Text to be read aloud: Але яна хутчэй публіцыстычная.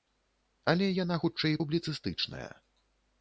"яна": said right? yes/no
yes